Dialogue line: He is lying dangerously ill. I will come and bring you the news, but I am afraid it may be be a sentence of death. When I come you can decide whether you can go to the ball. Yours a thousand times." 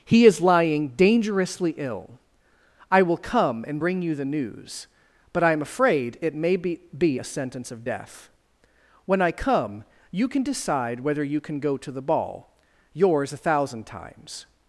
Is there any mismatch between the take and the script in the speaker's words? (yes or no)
no